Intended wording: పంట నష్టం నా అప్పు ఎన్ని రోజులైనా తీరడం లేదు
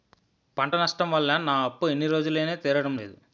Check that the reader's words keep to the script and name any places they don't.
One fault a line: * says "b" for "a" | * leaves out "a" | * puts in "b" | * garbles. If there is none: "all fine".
* puts in "వల్ల"